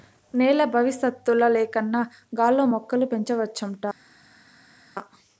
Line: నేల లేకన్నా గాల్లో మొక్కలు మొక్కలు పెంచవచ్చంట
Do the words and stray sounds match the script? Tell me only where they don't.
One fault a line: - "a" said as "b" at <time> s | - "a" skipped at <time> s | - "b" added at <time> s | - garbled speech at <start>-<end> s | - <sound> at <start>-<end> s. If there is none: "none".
- "బవిసత్తుల" added at 0.7 s
- "మొక్కలు" skipped at 3.1 s